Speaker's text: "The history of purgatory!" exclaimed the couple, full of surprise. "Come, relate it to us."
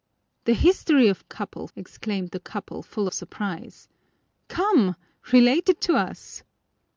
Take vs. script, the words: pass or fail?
fail